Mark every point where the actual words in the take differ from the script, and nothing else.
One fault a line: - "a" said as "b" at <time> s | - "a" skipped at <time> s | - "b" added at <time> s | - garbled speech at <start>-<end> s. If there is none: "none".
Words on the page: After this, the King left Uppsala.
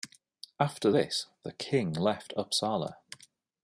none